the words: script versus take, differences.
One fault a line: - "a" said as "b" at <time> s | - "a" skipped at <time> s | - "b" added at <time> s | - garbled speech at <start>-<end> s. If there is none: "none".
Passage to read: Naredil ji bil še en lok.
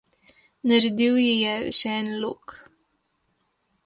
- "bil" said as "je" at 1.4 s